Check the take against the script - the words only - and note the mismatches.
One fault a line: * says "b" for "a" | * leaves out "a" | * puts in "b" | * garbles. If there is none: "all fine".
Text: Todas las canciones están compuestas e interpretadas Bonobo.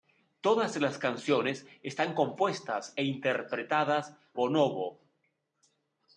all fine